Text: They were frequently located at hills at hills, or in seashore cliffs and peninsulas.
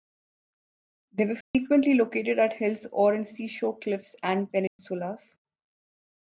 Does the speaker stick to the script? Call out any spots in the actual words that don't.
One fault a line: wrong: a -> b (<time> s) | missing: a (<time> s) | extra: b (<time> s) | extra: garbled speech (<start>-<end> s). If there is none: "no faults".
missing: at hills (2.9 s)